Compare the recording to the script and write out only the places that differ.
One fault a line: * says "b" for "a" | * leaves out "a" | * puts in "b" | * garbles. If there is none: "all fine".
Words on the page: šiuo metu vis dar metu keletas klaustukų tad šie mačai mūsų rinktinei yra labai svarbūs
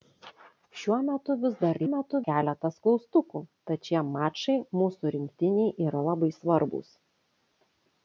all fine